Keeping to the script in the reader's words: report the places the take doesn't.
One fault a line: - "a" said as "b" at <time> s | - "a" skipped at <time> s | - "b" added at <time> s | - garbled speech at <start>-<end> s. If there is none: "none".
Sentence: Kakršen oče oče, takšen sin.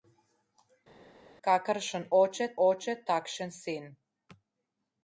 none